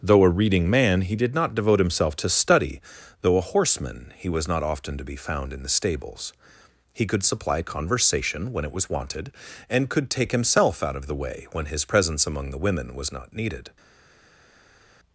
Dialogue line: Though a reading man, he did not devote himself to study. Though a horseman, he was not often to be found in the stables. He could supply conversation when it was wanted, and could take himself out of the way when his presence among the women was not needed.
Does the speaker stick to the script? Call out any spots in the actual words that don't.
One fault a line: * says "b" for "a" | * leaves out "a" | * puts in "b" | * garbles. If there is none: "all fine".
all fine